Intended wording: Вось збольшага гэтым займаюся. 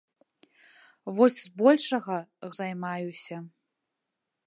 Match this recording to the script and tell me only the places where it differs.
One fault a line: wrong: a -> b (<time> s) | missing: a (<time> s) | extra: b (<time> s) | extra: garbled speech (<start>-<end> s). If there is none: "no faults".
missing: гэтым (2.2 s)